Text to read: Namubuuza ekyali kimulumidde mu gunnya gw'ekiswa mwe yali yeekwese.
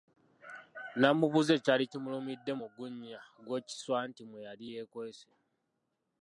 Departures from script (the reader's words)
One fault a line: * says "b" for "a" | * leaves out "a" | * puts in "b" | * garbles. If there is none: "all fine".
* puts in "anti"